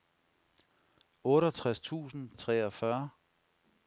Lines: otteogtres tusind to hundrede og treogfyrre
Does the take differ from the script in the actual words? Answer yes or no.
yes